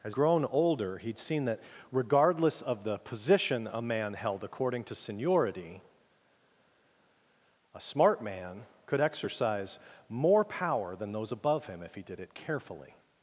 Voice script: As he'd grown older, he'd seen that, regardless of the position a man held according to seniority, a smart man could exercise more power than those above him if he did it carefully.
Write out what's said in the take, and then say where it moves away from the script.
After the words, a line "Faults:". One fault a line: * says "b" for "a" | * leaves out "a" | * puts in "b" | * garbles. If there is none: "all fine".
As grown older, he'd seen that, regardless of the position a man held according to seniority, a smart man could exercise more power than those above him if he did it carefully.
Faults:
* leaves out "he'd"